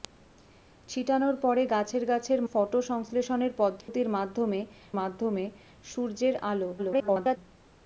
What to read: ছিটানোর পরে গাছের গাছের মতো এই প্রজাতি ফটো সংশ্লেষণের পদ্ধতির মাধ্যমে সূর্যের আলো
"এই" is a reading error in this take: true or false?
true